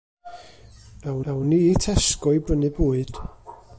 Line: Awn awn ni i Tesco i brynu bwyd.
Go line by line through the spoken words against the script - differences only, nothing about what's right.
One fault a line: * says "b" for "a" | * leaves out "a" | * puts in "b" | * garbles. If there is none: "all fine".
all fine